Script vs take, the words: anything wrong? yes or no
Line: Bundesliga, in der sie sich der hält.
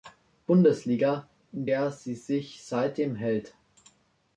yes